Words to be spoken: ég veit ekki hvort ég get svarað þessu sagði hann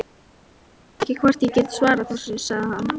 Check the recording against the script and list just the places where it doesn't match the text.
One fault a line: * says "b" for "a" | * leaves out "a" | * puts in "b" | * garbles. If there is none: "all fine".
all fine